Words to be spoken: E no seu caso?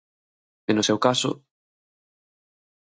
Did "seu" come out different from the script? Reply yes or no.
no